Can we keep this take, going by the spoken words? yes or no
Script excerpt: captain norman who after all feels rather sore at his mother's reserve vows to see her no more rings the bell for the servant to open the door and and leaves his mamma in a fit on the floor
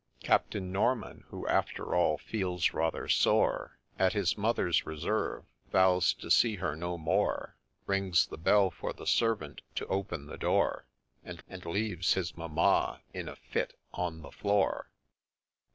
yes